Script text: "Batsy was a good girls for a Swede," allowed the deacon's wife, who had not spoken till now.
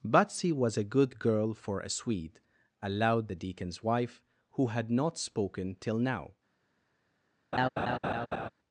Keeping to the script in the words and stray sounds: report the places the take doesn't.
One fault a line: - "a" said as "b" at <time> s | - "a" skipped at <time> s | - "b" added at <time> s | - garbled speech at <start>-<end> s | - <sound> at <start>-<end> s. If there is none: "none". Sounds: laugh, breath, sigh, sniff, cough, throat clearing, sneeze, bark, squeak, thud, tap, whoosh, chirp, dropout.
- "girls" said as "girl" at 1.2 s
- laugh at 7.5-8.5 s